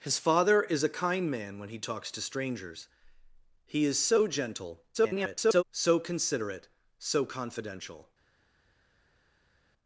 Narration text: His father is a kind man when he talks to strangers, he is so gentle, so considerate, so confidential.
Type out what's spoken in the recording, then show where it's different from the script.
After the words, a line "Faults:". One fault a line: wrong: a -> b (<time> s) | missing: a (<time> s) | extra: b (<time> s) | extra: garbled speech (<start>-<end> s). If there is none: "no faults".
His father is a kind man when he talks to strangers, he is so gentle, [garbled] so considerate, so confidential.
Faults:
extra: garbled speech (4.9-5.6 s)